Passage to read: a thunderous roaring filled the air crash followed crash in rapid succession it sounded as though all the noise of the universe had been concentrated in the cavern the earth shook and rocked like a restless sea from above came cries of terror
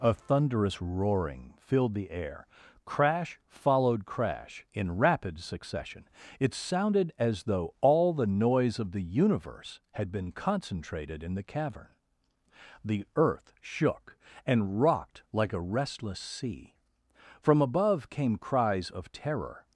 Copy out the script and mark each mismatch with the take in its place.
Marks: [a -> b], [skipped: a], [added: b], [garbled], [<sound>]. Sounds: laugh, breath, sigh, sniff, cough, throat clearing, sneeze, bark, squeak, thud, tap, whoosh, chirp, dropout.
a thunderous roaring filled the air crash followed crash in rapid succession it sounded as though all the noise of the universe had been concentrated in the cavern the earth shook and rocked like a restless sea from above came cries of terror